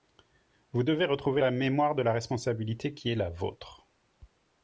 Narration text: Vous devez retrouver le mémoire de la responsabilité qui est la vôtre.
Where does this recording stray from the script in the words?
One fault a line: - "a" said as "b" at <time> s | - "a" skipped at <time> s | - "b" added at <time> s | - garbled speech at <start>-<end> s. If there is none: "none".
- "le" said as "la" at 1.4 s